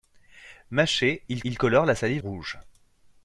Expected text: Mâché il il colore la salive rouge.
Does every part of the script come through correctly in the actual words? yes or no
yes